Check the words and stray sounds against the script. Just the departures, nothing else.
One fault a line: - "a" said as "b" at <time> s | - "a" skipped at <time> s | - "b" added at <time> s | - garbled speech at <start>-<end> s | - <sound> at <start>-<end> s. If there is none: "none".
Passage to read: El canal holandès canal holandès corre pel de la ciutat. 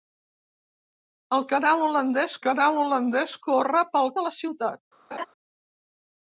- laugh at 5.1-5.3 s